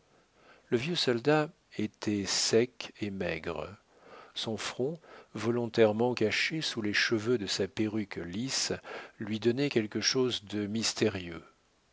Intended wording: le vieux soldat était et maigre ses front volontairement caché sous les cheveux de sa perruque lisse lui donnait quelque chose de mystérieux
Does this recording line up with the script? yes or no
no